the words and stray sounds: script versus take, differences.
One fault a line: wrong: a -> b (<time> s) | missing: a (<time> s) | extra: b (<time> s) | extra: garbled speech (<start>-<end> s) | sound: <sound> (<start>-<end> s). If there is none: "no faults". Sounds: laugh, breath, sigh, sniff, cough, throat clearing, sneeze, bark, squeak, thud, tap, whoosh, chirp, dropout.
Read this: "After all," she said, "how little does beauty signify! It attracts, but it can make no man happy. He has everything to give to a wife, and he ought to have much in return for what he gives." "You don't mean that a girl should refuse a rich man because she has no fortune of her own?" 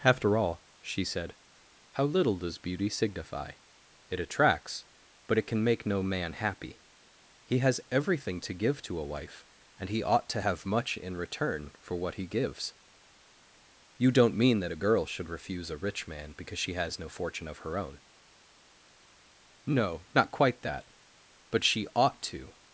extra: No not quite that But she ought to (19.7 s)